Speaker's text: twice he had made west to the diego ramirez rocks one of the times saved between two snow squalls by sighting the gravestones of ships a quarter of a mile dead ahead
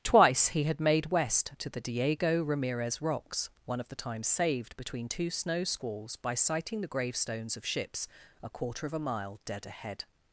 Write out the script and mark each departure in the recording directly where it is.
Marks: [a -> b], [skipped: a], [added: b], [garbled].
twice he had made west to the diego ramirez rocks one of the times saved between two snow squalls by sighting the gravestones of ships a quarter of a mile dead ahead